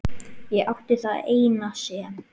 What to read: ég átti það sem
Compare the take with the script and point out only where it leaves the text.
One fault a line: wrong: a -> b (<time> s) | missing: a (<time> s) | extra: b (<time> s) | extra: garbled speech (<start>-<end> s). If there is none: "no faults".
extra: eina (1.4 s)